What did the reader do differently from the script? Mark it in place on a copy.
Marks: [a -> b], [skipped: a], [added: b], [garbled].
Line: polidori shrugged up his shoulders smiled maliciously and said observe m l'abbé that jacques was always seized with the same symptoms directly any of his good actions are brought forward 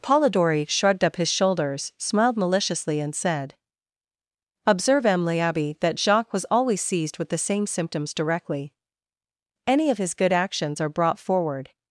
polidori shrugged up his shoulders smiled maliciously and said observe m l'abbé that jacques was always seized with the same symptoms directly any of his good actions are brought forward